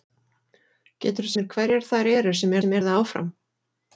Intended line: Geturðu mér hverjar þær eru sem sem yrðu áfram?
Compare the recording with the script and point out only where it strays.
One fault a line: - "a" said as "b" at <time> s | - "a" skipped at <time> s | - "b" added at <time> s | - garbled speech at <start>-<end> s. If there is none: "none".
none